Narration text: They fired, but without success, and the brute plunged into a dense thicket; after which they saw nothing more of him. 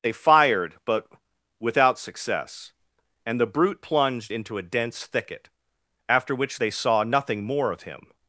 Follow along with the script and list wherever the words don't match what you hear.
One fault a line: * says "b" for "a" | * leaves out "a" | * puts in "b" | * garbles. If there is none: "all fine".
all fine